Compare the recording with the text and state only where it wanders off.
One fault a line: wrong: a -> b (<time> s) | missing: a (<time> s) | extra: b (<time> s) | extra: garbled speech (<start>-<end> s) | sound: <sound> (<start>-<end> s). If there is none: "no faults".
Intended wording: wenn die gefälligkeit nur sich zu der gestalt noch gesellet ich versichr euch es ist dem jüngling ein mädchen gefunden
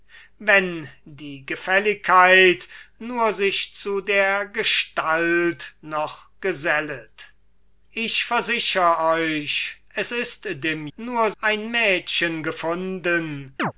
wrong: jüngling -> nur (10.9 s)
sound: chirp (13.6-13.7 s)